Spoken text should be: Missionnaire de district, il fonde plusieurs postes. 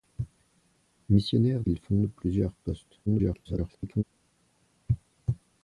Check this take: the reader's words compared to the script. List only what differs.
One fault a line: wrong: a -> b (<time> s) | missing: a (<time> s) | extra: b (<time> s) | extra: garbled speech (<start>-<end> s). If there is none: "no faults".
missing: de district (1.6 s)
extra: garbled speech (3.1-4.0 s)